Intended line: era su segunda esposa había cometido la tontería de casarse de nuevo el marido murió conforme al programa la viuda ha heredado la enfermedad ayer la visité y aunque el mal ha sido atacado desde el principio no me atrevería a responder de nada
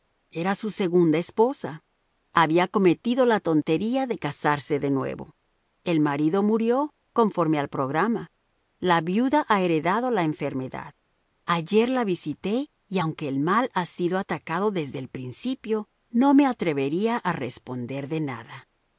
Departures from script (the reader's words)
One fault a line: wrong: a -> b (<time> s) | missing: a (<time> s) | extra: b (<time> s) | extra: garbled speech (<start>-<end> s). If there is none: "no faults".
no faults